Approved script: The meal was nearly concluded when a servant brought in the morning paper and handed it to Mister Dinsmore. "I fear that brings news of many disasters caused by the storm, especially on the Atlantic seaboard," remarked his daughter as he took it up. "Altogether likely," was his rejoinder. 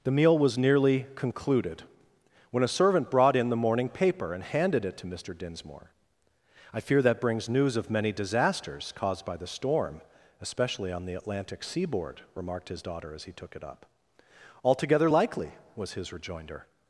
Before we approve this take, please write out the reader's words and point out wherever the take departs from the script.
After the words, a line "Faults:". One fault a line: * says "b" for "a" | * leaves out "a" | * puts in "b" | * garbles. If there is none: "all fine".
The meal was nearly concluded when a servant brought in the morning paper and handed it to Mister Dinsmore. "I fear that brings news of many disasters caused by the storm, especially on the Atlantic seaboard," remarked his daughter as he took it up. "Altogether likely," was his rejoinder.
Faults:
all fine